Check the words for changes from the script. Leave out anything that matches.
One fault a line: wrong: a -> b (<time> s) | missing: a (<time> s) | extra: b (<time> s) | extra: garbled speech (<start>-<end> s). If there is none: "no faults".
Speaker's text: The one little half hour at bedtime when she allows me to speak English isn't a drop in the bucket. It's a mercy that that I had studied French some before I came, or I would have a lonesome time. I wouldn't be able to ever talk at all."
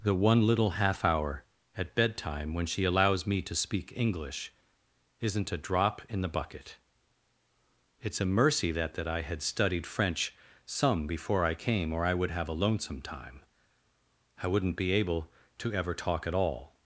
no faults